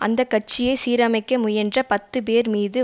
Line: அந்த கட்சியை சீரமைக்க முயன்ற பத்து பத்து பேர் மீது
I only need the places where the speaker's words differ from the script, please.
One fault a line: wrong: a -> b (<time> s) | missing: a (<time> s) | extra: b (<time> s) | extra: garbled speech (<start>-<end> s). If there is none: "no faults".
missing: பத்து (2.2 s)